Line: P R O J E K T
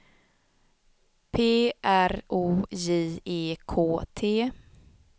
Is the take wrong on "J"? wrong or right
right